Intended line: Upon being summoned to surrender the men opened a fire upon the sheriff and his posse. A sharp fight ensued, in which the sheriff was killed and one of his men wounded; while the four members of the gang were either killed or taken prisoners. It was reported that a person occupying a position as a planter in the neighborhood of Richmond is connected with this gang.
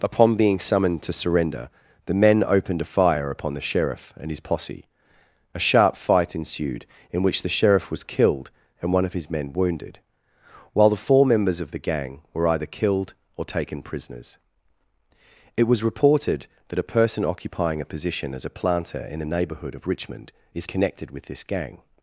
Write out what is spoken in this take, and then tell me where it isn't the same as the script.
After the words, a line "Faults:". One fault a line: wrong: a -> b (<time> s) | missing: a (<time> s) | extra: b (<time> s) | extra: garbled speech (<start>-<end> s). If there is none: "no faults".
Upon being summoned to surrender the men opened a fire upon the sheriff and his posse. A sharp fight ensued, in which the sheriff was killed and one of his men wounded; while the four members of the gang were either killed or taken prisoners. It was reported that a person occupying a position as a planter in the neighborhood of Richmond is connected with this gang.
Faults:
no faults